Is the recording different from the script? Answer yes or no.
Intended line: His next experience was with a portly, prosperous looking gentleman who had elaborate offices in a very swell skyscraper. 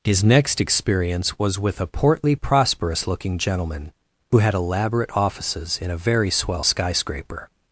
no